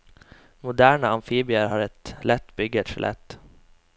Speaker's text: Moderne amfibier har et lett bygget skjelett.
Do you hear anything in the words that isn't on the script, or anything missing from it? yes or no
no